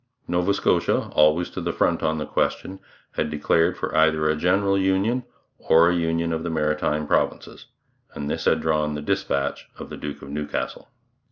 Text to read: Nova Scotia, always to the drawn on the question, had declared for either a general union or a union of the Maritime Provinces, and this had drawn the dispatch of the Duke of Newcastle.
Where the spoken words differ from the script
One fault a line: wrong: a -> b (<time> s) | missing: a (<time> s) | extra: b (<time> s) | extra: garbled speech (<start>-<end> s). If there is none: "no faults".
wrong: drawn -> front (1.7 s)